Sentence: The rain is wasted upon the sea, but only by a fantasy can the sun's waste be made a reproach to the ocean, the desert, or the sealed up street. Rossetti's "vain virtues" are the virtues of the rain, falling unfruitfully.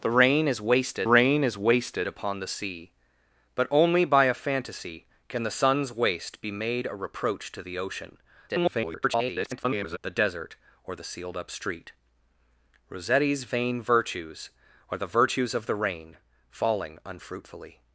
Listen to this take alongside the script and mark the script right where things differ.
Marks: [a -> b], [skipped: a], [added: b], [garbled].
The rain is wasted [added: rain is wasted] upon the sea, but only by a fantasy can the sun's waste be made a reproach to the ocean, [garbled] the desert, or the sealed up street. Rossetti's "vain virtues" are the virtues of the rain, falling unfruitfully.